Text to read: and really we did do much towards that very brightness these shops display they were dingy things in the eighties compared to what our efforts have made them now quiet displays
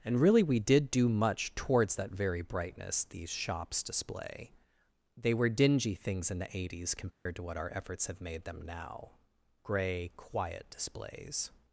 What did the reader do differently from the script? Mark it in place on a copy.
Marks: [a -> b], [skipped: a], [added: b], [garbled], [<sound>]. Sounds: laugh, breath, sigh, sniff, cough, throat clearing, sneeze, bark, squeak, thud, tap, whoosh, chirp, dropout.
and really we did do much towards that very brightness these shops display they were dingy things in the eighties compared [dropout] to what our efforts have made them now [added: grey] quiet displays